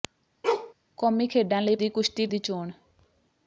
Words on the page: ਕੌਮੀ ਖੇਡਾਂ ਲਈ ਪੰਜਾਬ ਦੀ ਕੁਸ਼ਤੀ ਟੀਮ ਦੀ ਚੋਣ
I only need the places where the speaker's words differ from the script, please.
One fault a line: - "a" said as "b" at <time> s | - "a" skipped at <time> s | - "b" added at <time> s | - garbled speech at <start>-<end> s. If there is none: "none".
- "ਪੰਜਾਬ" skipped at 1.8 s
- "ਟੀਮ" skipped at 2.3 s